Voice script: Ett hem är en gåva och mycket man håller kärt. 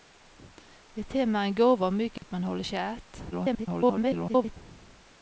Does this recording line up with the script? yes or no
no